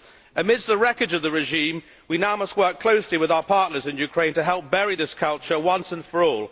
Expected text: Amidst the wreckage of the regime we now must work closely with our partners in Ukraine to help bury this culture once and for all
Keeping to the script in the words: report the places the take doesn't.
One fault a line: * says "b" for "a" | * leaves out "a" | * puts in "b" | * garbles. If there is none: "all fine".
all fine